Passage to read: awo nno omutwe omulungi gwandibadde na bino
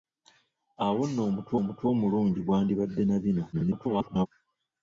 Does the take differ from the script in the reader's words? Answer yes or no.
yes